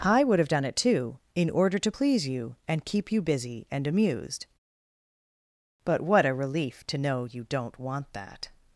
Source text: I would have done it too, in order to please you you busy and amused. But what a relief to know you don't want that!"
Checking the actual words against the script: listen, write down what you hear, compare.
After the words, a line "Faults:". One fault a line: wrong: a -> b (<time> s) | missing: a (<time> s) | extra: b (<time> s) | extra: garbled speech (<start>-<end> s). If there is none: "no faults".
I would have done it too, in order to please you and keep you busy and amused. But what a relief to know you don't want that!"
Faults:
extra: and keep (2.7 s)